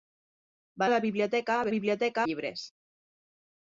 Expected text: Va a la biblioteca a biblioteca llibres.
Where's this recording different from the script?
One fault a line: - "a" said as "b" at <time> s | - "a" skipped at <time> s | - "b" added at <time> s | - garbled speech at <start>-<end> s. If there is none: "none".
none